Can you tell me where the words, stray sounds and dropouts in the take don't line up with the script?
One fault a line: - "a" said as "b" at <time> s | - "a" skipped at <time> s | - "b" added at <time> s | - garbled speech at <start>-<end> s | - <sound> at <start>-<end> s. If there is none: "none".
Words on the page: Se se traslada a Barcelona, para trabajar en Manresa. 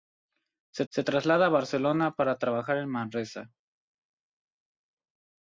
none